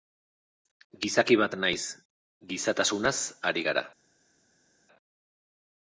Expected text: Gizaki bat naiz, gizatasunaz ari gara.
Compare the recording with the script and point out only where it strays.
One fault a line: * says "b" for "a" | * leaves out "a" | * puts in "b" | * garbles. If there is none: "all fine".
all fine